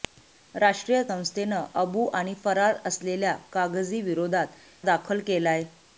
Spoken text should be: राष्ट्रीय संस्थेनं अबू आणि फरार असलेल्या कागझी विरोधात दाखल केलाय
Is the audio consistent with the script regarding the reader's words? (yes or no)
yes